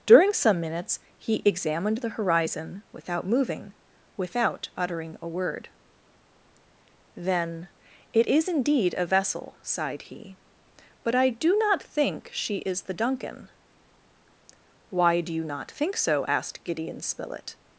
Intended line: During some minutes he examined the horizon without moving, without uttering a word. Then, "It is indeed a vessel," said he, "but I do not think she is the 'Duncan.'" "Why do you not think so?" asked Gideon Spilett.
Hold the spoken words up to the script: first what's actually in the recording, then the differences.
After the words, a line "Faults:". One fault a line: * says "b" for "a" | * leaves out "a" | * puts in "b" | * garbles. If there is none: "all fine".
During some minutes he examined the horizon without moving, without uttering a word. Then, "It is indeed a vessel," sighed he, "but I do not think she is the 'Duncan.'" "Why do you not think so?" asked Gideon Spilett.
Faults:
* says "sighed" for "said"